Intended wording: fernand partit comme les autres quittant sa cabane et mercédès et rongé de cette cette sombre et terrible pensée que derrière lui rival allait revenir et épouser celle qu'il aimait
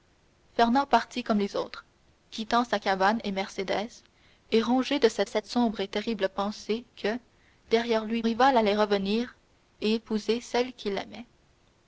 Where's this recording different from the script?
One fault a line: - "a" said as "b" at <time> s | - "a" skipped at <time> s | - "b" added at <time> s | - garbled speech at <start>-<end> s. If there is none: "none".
none